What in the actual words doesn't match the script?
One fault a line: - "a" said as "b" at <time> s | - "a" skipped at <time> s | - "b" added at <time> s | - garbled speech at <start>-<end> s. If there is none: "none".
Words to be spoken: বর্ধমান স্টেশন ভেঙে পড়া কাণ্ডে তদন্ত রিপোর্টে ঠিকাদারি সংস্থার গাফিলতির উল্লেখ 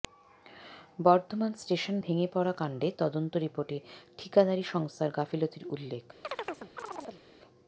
none